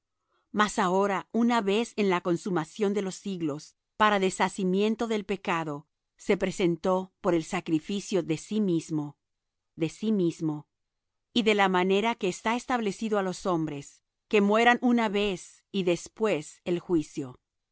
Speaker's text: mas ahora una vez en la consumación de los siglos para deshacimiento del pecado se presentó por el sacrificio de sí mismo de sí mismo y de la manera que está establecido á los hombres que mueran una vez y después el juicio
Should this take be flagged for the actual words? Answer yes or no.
no